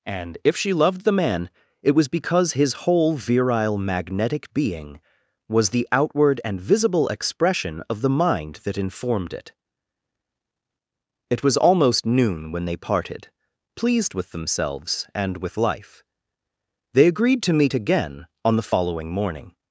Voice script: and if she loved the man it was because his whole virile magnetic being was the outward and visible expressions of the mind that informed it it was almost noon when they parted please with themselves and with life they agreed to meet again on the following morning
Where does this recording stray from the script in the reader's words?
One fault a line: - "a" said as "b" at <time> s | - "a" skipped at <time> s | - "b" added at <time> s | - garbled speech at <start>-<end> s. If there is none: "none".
- "expressions" said as "expression" at 7.1 s
- "please" said as "pleased" at 13.8 s